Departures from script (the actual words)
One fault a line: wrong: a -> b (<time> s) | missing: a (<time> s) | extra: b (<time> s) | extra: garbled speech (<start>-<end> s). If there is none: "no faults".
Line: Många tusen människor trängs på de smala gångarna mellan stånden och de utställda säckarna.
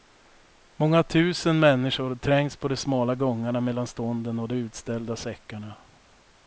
no faults